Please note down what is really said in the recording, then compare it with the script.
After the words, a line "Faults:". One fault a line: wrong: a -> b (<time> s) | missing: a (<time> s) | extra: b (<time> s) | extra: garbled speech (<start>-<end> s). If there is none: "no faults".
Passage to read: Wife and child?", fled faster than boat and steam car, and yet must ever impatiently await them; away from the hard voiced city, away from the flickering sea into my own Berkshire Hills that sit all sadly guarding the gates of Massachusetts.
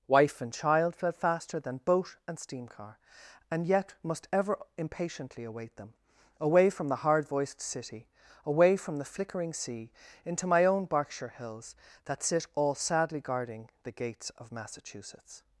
Wife and child?", fled faster than boat and steam car, and yet must ever impatiently await them; away from the hard voiced city, away from the flickering sea into my own Berkshire Hills that sit all sadly guarding the gates of Massachusetts.
Faults:
no faults